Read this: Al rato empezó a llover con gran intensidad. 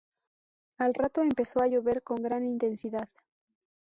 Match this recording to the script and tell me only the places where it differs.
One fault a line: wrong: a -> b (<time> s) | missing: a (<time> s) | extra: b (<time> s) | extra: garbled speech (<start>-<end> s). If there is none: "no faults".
no faults